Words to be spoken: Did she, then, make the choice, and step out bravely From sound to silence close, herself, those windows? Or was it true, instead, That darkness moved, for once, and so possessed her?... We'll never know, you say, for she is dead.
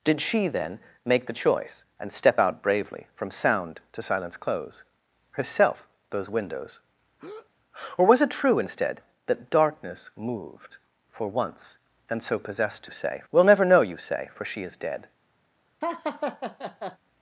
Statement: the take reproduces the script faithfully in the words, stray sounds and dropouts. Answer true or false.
false